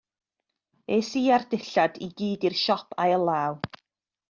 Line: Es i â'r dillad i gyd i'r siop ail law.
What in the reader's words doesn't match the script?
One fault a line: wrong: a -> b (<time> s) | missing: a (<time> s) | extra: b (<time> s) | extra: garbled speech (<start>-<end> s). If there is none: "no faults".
no faults